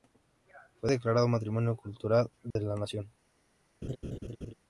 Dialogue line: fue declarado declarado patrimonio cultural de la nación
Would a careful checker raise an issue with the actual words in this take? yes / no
yes